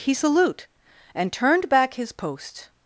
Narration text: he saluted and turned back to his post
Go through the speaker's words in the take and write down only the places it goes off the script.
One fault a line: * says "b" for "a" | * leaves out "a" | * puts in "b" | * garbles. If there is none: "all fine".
* says "salute" for "saluted"
* leaves out "to"